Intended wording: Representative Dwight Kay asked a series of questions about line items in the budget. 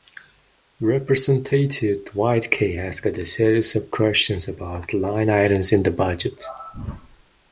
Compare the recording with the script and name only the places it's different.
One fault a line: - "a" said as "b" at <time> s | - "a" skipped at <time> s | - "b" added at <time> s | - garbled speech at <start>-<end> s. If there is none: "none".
none